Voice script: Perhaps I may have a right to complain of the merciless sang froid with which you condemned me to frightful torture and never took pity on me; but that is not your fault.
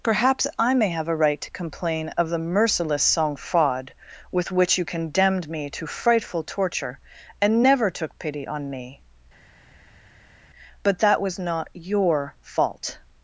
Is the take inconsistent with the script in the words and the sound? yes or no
yes